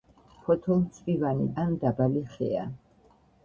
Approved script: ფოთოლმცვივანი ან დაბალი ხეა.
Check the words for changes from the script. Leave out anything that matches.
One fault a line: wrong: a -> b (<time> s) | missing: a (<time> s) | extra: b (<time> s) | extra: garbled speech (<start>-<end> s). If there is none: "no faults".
no faults